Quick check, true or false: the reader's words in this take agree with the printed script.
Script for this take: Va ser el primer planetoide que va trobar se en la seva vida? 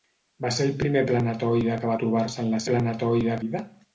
false